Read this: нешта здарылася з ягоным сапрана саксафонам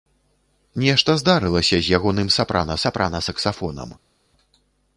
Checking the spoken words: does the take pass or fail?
fail